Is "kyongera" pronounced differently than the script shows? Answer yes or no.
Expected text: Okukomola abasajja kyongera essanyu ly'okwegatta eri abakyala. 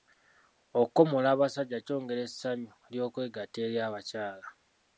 no